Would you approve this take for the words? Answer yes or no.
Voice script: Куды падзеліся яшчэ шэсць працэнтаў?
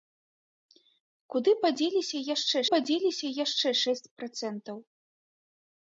no